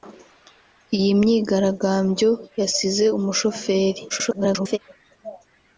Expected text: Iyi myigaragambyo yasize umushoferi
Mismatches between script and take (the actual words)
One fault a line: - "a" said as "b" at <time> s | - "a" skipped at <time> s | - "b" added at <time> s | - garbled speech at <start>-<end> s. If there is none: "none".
- garbled speech at 4.1-4.8 s